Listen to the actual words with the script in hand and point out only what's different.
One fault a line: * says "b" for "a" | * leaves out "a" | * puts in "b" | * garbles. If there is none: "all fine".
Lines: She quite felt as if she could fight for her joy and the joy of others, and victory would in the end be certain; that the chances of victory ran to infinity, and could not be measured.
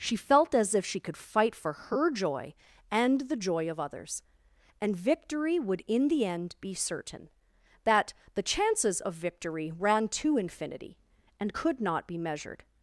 * leaves out "quite"